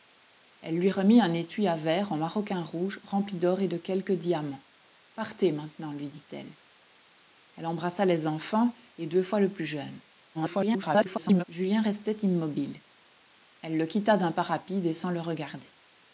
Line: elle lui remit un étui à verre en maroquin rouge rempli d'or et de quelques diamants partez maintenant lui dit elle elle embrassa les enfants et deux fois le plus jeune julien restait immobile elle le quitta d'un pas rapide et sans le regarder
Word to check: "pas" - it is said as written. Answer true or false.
true